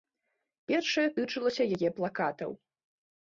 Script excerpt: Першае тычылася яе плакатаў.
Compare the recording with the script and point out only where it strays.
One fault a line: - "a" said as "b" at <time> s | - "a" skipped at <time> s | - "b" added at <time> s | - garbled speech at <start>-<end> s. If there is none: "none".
none